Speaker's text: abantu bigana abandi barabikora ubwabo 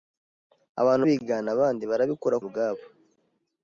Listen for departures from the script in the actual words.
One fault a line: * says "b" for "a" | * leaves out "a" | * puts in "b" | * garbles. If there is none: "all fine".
all fine